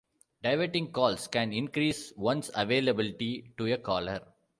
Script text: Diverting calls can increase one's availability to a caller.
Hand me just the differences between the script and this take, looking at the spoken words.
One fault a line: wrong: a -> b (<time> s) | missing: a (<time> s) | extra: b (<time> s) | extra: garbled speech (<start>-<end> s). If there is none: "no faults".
no faults